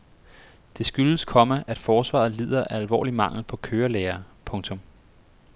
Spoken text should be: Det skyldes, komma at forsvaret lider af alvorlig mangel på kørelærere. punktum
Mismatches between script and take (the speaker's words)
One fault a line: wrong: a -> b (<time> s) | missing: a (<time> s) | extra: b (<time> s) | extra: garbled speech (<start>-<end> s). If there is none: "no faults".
no faults